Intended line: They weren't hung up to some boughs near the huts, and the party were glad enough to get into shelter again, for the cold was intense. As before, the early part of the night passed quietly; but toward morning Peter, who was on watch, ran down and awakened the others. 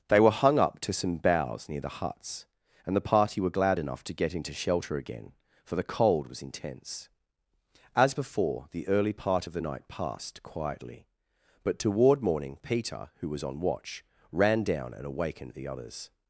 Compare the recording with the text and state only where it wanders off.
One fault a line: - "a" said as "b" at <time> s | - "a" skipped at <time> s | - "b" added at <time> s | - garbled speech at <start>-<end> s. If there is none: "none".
- "weren't" said as "were" at 0.2 s